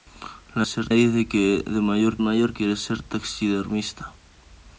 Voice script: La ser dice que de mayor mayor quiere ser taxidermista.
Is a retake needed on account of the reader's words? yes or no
no